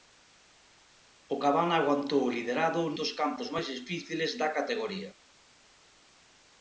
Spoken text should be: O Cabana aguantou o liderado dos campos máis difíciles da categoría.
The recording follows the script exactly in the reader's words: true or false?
true